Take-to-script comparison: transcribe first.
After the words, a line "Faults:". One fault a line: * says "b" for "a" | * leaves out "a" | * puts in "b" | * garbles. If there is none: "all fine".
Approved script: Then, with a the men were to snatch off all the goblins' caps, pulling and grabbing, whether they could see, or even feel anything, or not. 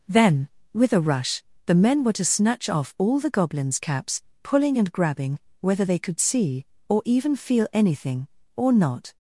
Then, with a rush, the men were to snatch off all the goblins' caps, pulling and grabbing, whether they could see, or even feel anything, or not.
Faults:
* puts in "rush"